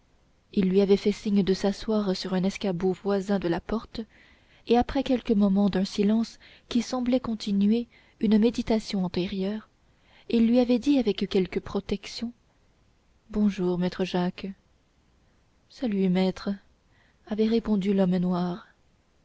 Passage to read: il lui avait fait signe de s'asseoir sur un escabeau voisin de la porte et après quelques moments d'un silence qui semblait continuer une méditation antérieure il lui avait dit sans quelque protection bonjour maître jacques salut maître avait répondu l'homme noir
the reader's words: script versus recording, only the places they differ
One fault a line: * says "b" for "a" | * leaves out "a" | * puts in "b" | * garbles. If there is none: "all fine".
* says "avec" for "sans"